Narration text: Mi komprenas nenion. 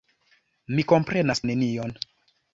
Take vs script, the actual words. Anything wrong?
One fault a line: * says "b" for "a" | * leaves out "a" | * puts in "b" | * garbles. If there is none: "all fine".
all fine